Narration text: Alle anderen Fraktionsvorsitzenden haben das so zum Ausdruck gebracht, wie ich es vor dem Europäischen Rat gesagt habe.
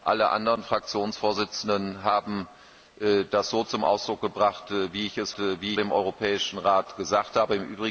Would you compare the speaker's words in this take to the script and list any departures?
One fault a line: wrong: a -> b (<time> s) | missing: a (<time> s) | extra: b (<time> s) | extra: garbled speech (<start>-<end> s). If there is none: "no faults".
wrong: vor -> wie (5.4 s)